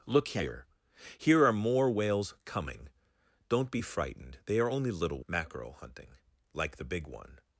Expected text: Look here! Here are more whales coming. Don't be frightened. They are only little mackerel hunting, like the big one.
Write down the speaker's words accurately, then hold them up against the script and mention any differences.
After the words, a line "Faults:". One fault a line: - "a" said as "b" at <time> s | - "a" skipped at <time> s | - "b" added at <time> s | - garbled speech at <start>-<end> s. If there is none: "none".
Look here! Here are more whales coming. Don't be frightened. They are only little mackerel hunting, like the big one.
Faults:
none